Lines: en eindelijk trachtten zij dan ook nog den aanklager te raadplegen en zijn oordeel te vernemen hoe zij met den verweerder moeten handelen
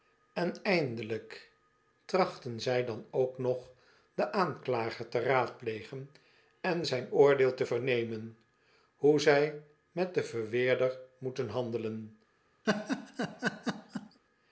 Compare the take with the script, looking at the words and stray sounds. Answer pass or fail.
fail